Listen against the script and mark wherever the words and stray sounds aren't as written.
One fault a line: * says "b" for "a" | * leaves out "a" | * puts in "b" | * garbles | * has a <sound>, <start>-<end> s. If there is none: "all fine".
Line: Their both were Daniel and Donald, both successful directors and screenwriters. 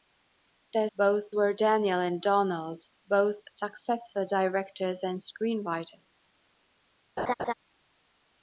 * has a laugh, 7.2-7.5 s